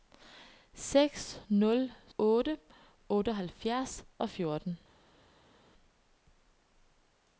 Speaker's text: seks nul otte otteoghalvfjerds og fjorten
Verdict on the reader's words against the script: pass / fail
pass